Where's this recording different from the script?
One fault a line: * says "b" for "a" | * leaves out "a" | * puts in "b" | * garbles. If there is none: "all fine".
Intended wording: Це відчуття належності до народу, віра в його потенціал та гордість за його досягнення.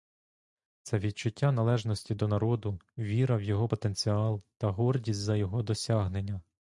all fine